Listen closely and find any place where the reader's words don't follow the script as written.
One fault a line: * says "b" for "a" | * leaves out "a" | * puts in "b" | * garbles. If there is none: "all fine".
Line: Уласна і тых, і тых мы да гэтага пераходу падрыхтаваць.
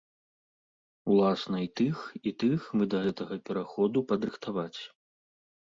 all fine